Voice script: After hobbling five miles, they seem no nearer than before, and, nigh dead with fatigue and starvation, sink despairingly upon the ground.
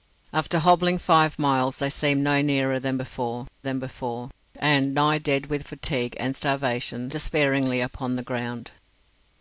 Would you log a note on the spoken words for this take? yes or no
yes